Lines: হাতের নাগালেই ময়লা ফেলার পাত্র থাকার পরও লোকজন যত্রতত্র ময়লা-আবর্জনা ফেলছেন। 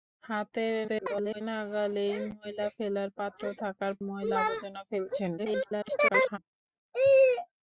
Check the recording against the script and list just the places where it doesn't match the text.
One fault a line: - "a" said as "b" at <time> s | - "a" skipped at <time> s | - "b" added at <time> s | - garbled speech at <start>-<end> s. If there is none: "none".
- garbled speech at 0.9-1.4 s
- "পরও লোকজন যত্রতত্র" skipped at 3.9 s
- garbled speech at 5.4-6.4 s